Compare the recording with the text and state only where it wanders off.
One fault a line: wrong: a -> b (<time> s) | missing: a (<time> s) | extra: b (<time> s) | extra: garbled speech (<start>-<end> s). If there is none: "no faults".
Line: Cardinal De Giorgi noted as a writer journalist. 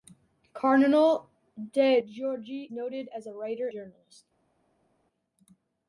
no faults